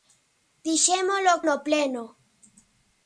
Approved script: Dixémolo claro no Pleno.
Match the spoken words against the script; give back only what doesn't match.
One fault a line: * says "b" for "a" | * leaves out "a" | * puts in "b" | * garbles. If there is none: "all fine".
* leaves out "claro"